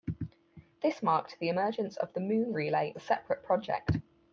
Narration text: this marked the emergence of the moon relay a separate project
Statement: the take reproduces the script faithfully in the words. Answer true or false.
true